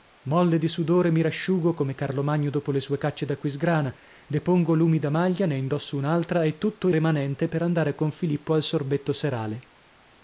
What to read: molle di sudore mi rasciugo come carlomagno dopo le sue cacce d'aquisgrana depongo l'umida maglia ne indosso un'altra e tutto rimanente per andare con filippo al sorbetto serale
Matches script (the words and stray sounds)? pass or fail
pass